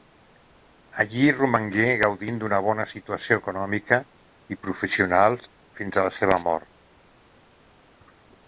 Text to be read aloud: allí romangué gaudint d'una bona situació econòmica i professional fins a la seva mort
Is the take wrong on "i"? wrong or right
right